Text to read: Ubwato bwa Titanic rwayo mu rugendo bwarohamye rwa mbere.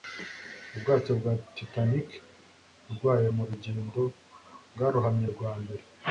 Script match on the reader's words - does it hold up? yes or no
yes